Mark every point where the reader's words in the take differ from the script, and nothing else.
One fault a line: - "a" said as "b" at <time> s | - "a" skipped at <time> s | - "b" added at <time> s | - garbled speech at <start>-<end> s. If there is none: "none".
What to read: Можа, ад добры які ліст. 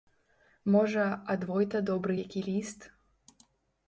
- "войта" added at 1.5 s